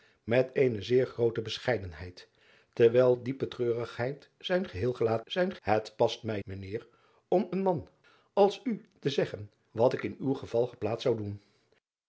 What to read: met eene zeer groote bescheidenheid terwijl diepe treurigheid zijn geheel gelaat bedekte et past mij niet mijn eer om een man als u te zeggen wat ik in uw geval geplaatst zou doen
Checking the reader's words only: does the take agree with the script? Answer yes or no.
no